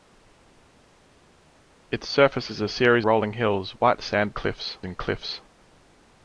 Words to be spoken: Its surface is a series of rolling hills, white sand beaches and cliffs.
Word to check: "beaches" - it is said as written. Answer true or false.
false